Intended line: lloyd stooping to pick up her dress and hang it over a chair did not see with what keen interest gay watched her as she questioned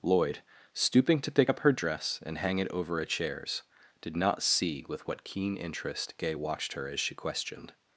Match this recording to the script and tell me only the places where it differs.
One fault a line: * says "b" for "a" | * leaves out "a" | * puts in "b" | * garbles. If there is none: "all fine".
* says "chairs" for "chair"